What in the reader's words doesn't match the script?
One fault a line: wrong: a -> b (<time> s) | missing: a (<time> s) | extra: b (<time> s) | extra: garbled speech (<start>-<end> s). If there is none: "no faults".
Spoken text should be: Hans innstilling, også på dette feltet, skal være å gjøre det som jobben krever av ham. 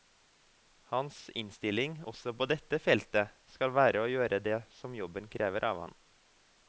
no faults